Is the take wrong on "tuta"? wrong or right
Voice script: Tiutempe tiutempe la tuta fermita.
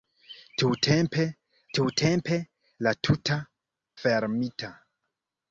right